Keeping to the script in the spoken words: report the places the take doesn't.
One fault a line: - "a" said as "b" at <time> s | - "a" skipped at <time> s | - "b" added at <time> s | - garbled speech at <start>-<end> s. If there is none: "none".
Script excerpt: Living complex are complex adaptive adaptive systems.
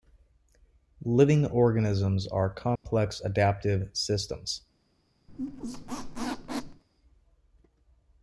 - "complex" said as "organisms" at 1.4 s
- "adaptive" skipped at 3.9 s